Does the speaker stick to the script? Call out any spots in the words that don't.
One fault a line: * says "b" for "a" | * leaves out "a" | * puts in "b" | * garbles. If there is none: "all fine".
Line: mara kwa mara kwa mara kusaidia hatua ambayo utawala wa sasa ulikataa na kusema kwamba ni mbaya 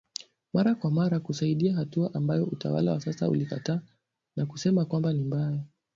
* leaves out "kwa mara"